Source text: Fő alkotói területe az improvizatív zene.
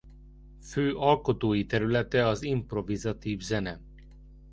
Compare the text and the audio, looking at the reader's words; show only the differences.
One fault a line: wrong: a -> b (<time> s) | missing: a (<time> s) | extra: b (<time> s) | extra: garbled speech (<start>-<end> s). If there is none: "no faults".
no faults